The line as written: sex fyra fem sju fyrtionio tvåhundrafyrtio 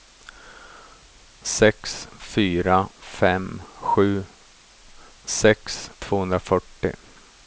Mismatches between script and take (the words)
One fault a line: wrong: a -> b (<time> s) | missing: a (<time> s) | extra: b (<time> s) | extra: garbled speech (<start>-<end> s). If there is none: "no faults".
wrong: fyrtionio -> sex (5.2 s)